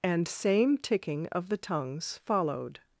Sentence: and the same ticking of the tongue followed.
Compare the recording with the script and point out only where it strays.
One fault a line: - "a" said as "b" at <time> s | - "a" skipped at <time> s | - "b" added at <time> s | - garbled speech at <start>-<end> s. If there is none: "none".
- "the" skipped at 0.3 s
- "tongue" said as "tongues" at 1.6 s